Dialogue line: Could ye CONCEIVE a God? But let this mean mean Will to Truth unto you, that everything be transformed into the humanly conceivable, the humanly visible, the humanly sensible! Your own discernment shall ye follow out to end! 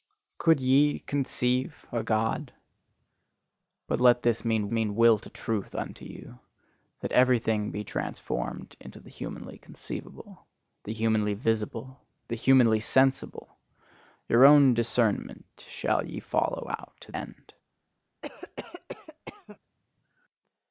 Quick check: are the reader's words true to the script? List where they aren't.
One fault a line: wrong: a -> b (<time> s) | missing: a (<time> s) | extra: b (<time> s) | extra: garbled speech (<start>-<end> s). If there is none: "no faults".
no faults